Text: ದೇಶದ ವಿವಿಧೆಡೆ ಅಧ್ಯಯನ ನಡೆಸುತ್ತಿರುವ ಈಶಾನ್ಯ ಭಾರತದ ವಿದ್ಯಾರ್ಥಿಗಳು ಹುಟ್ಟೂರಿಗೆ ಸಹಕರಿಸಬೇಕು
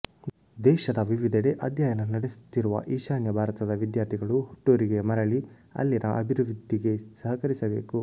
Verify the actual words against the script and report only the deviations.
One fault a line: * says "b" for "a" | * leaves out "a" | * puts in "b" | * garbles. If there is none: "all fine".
* puts in "ಮರಳಿ ಅಲ್ಲಿನ ಅಭಿವೃದ್ಧಿಗೆ"